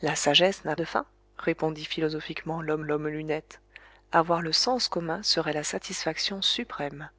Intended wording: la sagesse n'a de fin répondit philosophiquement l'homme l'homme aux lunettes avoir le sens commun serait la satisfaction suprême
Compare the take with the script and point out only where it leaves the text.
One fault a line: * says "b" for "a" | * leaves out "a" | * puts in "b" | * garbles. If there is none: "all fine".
all fine